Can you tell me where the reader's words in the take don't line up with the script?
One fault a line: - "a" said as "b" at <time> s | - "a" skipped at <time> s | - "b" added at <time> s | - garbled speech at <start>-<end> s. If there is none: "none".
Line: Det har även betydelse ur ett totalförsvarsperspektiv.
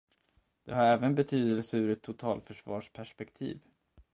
none